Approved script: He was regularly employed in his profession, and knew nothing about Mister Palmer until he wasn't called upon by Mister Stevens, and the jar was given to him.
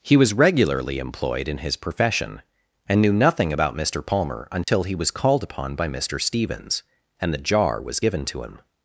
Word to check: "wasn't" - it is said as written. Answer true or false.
false